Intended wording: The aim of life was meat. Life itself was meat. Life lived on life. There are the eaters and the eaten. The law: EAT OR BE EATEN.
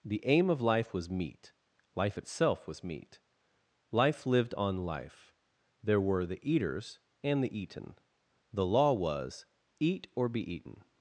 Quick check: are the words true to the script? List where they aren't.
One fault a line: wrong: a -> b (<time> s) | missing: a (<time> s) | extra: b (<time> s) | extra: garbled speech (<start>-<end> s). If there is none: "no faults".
wrong: are -> were (6.0 s)
extra: was (8.9 s)